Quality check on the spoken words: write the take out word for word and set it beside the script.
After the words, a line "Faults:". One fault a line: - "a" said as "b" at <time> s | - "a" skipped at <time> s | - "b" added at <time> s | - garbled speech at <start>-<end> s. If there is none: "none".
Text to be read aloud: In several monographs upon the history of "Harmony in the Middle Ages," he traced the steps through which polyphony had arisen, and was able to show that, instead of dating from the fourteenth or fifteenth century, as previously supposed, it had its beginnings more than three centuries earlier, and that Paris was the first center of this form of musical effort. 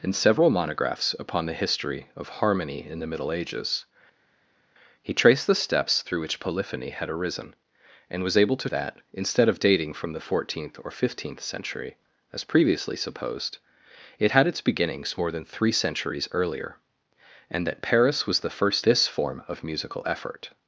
In several monographs upon the history of "Harmony in the Middle Ages," he traced the steps through which polyphony had arisen, and was able to that, instead of dating from the fourteenth or fifteenth century, as previously supposed, it had its beginnings more than three centuries earlier, and that Paris was the first this form of musical effort.
Faults:
- "show" skipped at 8.7 s
- "center of" skipped at 18.9 s